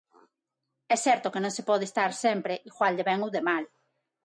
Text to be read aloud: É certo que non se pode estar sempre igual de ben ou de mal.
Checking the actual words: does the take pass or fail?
pass